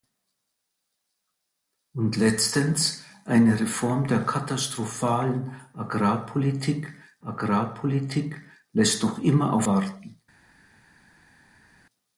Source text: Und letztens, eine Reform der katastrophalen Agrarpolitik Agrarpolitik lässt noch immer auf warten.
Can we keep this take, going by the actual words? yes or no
yes